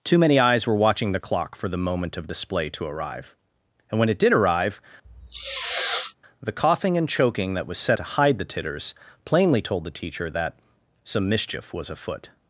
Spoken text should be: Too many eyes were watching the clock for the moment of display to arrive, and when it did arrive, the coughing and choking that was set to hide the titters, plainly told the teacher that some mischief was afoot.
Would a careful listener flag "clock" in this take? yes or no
no